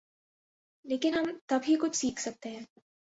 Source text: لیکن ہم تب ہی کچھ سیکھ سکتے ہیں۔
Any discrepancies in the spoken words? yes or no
no